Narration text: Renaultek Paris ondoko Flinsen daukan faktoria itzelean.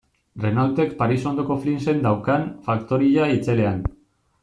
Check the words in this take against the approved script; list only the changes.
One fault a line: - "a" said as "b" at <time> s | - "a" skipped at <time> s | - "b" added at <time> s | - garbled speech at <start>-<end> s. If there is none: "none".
none